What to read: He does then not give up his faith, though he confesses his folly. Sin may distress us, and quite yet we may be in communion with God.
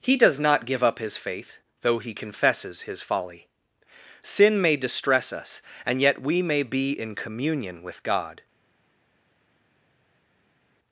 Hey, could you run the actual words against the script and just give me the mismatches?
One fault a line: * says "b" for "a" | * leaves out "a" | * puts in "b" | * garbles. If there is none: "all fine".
* leaves out "then"
* leaves out "quite"